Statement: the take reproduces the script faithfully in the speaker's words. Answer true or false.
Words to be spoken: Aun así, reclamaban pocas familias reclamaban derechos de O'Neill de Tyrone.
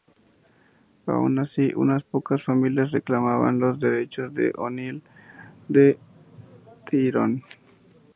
false